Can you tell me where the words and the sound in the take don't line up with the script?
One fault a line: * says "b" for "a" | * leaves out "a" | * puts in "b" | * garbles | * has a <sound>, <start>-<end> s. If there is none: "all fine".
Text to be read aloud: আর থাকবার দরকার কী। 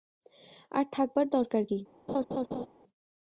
* has a laugh, 2.1-2.7 s